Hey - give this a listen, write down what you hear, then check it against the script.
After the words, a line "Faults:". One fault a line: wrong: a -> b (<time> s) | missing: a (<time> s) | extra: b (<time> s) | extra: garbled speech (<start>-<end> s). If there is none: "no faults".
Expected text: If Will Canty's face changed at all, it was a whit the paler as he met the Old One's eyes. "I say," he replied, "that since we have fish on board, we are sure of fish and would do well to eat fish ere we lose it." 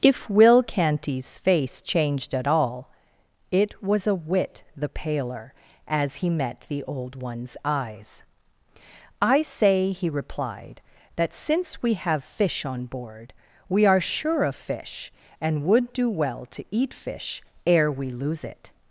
If Will Canty's face changed at all, it was a whit the paler as he met the Old One's eyes. "I say," he replied, "that since we have fish on board, we are sure of fish and would do well to eat fish ere we lose it."
Faults:
no faults